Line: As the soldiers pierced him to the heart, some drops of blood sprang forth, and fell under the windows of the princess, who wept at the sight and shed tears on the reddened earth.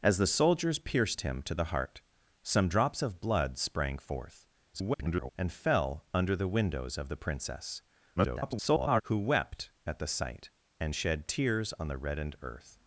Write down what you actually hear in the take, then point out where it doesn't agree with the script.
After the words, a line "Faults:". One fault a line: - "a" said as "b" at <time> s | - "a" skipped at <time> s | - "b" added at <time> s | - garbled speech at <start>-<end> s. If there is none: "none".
As the soldiers pierced him to the heart, some drops of blood sprang forth, [garbled] and fell under the windows of the princess, [garbled] who wept at the sight and shed tears on the reddened earth.
Faults:
- garbled speech at 4.7-5.3 s
- garbled speech at 8.2-9.0 s